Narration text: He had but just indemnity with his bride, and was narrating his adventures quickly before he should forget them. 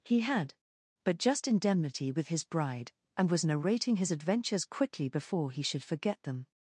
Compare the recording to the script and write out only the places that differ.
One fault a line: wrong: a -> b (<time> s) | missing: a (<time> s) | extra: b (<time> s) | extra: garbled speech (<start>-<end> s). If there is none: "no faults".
no faults